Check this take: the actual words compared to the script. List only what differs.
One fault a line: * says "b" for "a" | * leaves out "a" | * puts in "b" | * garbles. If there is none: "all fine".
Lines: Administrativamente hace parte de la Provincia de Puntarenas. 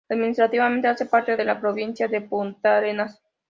all fine